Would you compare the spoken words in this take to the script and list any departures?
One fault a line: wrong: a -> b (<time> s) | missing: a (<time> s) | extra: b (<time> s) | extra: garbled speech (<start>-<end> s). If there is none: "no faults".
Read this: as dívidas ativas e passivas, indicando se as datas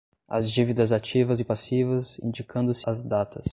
no faults